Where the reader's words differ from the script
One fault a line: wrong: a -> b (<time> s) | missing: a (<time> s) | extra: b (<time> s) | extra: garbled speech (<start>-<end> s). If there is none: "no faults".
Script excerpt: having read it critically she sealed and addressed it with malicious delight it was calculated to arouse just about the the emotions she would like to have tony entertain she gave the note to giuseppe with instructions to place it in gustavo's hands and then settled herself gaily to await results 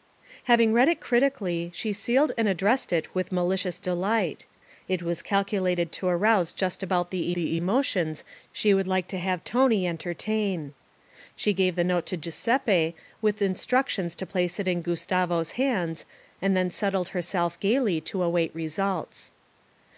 no faults